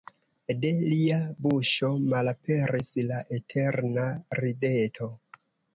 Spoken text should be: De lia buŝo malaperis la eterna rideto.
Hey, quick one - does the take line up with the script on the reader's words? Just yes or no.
yes